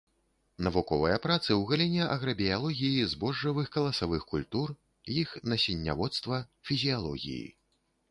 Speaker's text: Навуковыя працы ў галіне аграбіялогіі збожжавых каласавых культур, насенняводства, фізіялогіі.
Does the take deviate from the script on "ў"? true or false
false